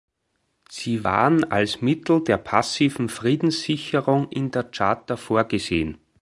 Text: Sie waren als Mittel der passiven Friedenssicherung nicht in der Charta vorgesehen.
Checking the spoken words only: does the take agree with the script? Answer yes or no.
no